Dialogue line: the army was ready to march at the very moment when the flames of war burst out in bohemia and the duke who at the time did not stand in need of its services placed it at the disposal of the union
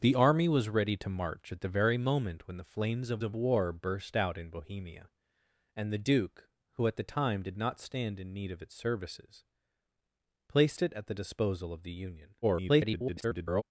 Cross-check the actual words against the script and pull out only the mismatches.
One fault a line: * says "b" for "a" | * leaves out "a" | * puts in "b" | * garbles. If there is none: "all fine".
* puts in "of"
* garbles